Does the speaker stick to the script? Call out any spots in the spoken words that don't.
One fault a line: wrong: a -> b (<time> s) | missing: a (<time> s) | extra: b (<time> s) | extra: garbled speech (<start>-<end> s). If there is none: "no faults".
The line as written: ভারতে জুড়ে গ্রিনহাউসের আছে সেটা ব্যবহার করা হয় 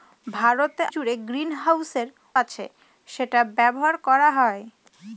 no faults